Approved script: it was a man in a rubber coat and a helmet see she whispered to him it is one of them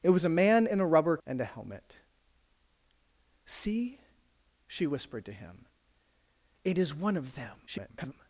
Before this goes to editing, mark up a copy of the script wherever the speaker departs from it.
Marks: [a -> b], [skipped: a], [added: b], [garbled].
it was a man in a rubber [skipped: coat] and a helmet see she whispered to him it is one of them [garbled]